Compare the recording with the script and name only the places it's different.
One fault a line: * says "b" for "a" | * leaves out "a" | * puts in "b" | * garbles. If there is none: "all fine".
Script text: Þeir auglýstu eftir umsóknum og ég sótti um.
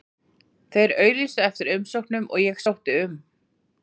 all fine